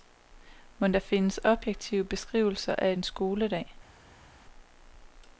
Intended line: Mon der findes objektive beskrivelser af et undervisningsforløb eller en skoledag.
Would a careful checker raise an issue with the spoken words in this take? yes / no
yes